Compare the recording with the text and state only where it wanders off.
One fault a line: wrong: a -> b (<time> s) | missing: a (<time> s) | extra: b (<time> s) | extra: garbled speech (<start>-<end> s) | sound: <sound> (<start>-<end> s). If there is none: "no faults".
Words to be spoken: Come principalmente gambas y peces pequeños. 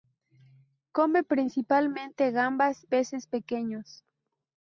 missing: y (2.9 s)